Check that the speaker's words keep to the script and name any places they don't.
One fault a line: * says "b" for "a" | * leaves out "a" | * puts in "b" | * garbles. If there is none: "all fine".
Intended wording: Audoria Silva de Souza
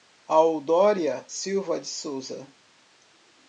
all fine